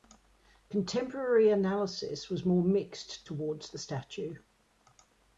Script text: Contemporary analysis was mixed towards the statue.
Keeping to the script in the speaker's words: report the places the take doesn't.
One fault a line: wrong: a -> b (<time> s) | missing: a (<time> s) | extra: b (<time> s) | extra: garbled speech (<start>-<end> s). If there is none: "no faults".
extra: more (2.4 s)